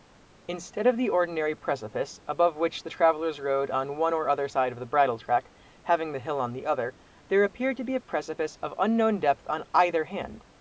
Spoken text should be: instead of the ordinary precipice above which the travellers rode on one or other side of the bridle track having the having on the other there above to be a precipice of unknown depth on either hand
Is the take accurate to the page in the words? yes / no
no